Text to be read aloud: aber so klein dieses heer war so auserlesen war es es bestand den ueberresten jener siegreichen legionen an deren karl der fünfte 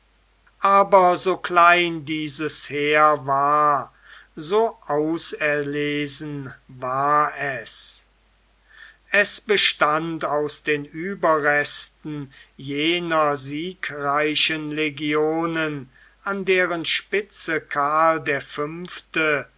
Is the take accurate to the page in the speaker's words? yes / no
no